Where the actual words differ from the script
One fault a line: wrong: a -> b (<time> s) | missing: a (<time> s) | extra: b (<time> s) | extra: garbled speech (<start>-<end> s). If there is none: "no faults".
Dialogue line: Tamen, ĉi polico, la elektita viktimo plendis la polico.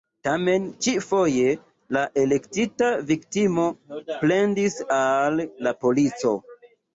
wrong: polico -> foje (1.1 s)
extra: al (5.0 s)